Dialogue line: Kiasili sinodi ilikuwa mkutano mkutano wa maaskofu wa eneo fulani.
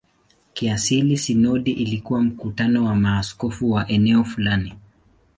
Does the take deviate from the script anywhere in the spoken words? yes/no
yes